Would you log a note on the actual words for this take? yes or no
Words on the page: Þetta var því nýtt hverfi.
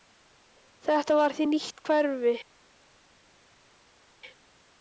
no